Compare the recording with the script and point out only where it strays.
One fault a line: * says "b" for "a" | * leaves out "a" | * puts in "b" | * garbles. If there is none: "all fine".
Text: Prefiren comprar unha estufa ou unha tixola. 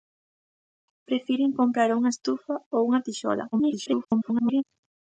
* garbles